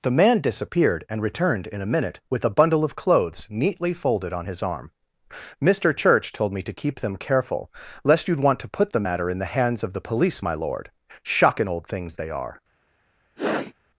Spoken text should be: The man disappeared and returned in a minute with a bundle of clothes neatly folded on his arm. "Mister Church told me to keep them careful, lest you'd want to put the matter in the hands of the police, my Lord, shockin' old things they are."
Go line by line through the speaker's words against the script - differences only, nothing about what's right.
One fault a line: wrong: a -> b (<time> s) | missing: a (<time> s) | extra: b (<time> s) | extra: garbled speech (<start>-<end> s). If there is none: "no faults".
no faults